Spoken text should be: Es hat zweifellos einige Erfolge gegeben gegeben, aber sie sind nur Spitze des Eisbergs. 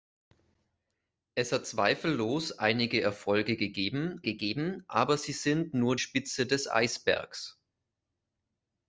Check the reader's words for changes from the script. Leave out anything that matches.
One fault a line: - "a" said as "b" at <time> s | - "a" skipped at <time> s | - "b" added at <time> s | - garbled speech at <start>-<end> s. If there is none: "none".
none